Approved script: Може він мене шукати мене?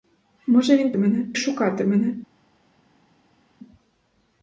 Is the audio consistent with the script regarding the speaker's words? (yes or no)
yes